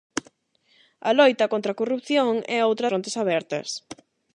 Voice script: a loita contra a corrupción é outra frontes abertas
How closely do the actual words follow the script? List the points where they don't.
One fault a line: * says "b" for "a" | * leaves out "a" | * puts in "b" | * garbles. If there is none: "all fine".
all fine